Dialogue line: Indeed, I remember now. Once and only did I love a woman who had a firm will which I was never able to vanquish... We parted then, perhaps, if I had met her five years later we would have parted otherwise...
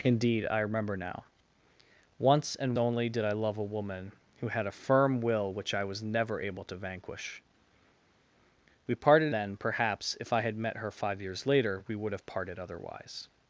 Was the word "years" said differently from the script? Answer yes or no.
no